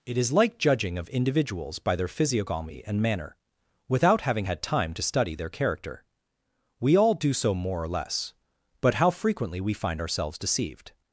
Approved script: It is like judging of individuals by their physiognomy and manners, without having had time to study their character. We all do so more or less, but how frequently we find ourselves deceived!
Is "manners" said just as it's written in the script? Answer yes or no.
no